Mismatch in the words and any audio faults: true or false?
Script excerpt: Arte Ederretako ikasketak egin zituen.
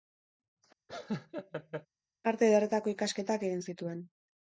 true